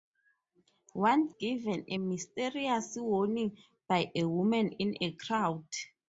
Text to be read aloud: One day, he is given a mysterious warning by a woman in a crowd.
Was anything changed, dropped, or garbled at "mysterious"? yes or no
no